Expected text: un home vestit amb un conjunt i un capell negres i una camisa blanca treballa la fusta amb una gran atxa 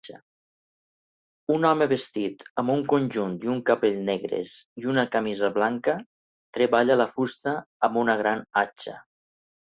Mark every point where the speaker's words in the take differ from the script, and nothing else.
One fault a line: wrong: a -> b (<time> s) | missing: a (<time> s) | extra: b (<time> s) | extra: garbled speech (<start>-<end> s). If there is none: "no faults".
no faults